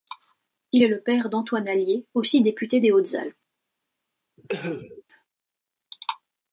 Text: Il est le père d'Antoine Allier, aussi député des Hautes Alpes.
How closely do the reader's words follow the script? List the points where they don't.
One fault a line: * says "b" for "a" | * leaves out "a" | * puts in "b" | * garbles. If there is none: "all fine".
all fine